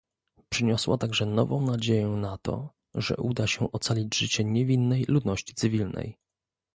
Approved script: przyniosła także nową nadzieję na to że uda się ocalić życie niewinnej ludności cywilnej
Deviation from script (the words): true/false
false